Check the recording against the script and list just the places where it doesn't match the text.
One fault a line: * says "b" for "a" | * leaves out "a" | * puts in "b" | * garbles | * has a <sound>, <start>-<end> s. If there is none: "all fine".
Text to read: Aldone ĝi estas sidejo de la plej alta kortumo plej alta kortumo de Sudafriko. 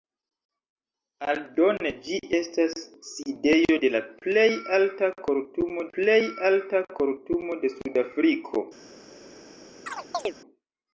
* has a chirp, 9.9-10.3 s